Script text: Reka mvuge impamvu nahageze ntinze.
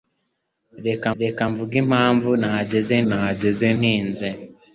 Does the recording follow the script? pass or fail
fail